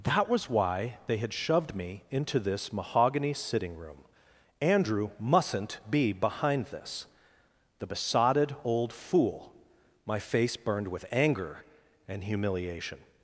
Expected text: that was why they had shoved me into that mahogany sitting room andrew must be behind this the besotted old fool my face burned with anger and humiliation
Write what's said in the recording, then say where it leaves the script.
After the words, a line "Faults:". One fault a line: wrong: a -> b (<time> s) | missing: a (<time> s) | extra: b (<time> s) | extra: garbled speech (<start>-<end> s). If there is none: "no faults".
that was why they had shoved me into this mahogany sitting room andrew mustn't be behind this the besotted old fool my face burned with anger and humiliation
Faults:
wrong: that -> this (2.4 s)
wrong: must -> mustn't (5.2 s)